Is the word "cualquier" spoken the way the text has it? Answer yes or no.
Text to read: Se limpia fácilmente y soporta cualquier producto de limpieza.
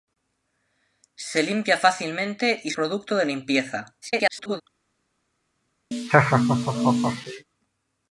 no